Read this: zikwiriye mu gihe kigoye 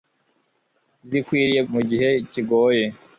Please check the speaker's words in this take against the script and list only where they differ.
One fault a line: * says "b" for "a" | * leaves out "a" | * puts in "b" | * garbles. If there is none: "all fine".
all fine